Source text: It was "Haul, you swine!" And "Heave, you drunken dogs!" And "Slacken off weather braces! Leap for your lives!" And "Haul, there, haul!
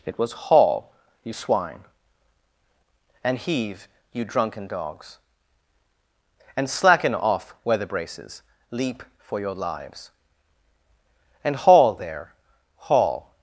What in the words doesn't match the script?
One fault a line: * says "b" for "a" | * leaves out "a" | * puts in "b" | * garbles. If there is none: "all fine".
all fine